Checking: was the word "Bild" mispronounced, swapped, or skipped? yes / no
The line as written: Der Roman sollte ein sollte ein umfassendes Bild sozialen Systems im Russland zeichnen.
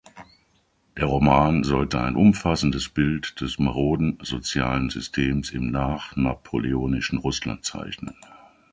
yes